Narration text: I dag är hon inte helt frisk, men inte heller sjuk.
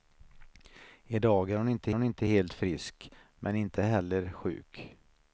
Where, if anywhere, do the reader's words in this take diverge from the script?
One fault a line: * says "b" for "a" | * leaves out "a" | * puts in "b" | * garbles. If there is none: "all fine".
* puts in "hon inte"